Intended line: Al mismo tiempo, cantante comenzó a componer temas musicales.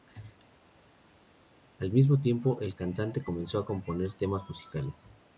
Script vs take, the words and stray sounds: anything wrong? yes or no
yes